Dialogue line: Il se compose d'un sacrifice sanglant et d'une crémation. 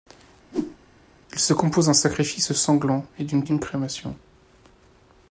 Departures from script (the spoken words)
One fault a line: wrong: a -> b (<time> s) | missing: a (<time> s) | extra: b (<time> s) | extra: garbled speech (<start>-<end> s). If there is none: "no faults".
extra: d'une (3.4 s)